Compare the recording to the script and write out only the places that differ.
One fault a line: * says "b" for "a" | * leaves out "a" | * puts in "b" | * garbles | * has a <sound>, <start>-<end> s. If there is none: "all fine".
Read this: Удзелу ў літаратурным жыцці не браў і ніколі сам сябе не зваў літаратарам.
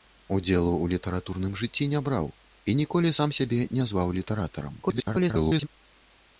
* garbles